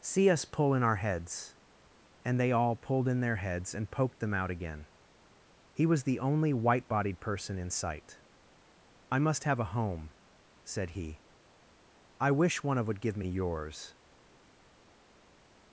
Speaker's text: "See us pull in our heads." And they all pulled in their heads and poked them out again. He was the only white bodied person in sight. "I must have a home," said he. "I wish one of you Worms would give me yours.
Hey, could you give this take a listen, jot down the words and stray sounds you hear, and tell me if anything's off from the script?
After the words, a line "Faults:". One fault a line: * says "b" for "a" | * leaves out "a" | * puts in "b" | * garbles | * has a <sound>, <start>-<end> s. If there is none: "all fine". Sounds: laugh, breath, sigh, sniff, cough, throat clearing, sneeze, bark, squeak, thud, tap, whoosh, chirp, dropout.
"See us pull in our heads." And they all pulled in their heads and poked them out again. He was the only white bodied person in sight. "I must have a home," said he. "I wish one of would give me yours.
Faults:
* leaves out "you Worms"